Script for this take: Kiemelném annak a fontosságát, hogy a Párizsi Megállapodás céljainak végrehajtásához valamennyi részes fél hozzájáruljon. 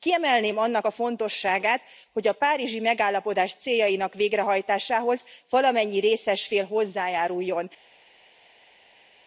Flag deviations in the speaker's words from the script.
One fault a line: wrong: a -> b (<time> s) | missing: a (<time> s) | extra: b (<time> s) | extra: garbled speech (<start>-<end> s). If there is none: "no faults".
no faults